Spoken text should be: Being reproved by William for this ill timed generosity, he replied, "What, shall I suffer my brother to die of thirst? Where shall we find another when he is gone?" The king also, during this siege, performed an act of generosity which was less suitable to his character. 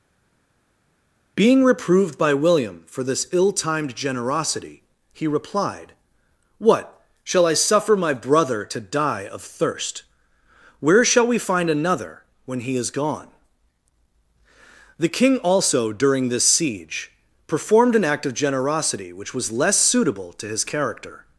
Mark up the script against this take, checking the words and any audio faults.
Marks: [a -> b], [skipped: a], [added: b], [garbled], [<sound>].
Being reproved by William for this ill timed generosity, he replied, "What, shall I suffer my brother to die of thirst? Where shall we find another when he is gone?" The king also, during this siege, performed an act of generosity which was less suitable to his character.